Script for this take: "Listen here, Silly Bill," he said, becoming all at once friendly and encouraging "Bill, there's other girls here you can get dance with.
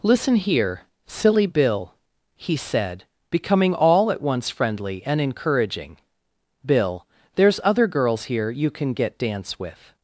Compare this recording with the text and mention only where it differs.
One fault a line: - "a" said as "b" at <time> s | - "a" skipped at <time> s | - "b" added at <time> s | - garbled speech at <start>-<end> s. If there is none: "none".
none